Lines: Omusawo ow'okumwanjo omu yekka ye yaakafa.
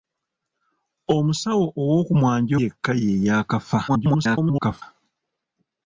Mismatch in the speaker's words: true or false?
true